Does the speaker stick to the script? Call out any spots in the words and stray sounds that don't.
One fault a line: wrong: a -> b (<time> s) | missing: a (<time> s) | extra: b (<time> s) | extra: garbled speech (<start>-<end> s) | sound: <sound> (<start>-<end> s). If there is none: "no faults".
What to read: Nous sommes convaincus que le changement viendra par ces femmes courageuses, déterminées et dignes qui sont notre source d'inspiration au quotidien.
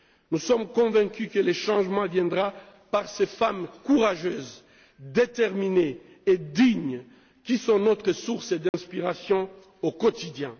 sound: dropout (8.7-8.7 s)